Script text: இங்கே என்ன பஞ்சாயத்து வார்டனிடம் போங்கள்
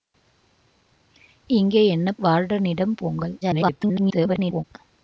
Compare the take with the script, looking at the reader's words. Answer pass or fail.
fail